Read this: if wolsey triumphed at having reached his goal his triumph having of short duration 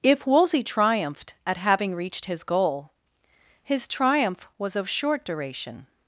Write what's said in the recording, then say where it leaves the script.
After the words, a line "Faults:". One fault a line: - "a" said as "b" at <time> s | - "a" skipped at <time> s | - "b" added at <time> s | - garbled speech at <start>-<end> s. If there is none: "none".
if wolsey triumphed at having reached his goal his triumph was of short duration
Faults:
- "having" said as "was" at 4.6 s